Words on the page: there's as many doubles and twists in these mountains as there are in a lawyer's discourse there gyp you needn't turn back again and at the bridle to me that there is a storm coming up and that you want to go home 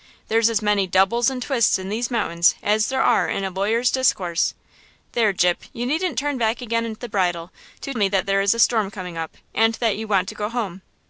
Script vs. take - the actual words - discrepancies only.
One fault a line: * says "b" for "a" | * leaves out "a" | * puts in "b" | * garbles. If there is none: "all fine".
all fine